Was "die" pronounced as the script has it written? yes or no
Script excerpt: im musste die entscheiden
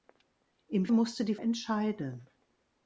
yes